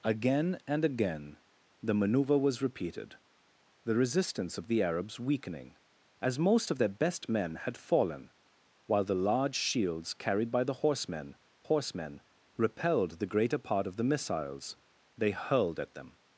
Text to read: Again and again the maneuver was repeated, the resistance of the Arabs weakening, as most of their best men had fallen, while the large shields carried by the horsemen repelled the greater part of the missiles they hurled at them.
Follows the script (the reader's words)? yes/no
no